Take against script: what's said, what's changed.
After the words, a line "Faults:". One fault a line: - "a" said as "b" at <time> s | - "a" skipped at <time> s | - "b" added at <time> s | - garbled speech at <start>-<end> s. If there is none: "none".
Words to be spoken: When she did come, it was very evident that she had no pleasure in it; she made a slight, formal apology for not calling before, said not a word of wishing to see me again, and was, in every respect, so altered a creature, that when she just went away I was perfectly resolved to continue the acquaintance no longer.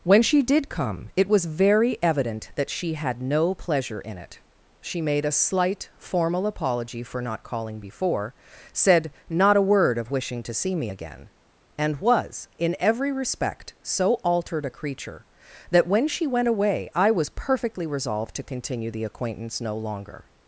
When she did come, it was very evident that she had no pleasure in it; she made a slight, formal apology for not calling before, said not a word of wishing to see me again, and was, in every respect, so altered a creature, that when she went away I was perfectly resolved to continue the acquaintance no longer.
Faults:
- "just" skipped at 16.3 s